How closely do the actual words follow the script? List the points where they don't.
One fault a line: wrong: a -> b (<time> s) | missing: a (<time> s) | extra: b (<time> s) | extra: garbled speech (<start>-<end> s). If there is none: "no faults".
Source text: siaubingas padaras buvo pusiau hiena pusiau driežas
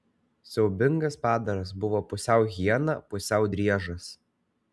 no faults